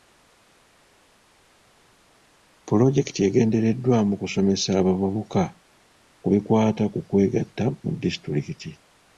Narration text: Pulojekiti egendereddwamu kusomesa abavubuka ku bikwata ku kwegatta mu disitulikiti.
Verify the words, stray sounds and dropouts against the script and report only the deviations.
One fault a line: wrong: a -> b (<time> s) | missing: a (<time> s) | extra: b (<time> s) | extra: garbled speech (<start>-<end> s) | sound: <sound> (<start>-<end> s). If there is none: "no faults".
no faults